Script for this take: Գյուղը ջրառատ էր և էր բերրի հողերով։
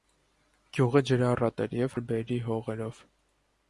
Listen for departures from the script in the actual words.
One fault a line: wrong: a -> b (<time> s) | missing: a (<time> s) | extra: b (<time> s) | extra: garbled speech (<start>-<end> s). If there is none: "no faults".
no faults